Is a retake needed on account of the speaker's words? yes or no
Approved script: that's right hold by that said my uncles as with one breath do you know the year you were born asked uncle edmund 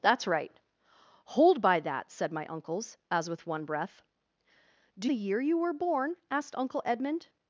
yes